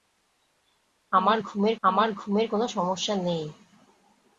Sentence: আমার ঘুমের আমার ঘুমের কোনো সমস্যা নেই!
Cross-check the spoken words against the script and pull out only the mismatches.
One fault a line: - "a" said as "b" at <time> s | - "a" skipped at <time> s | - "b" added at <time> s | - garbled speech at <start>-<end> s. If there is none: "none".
none